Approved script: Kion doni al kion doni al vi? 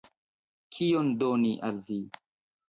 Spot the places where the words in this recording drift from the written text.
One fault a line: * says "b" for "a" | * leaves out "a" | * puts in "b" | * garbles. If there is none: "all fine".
* leaves out "kion doni al"